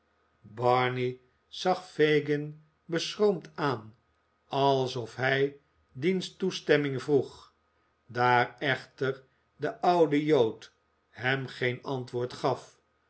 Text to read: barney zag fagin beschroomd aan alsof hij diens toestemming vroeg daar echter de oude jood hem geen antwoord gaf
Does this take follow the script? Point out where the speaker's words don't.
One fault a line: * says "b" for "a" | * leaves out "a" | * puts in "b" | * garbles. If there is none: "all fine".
all fine